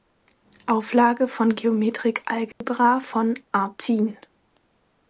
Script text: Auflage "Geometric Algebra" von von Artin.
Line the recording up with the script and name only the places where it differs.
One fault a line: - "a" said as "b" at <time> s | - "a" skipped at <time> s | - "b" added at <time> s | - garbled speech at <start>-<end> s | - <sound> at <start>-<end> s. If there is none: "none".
- "von" added at 1.3 s
- dropout at 2.5-2.6 s
- "von" skipped at 3.3 s